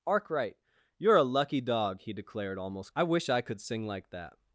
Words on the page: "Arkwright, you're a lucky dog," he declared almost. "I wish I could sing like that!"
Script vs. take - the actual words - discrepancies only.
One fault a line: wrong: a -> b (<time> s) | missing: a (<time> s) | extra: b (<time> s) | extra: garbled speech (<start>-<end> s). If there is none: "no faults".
no faults